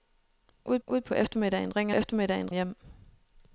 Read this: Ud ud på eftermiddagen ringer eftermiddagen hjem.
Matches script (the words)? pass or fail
pass